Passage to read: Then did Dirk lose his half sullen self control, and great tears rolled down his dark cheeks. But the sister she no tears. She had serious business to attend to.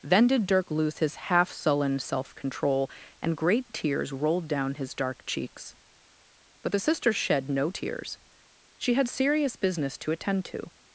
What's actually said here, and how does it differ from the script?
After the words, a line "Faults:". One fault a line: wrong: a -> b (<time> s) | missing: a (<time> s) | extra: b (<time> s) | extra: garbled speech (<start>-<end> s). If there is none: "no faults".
Then did Dirk lose his half sullen self control, and great tears rolled down his dark cheeks. But the sister shed no tears. She had serious business to attend to.
Faults:
wrong: she -> shed (7.1 s)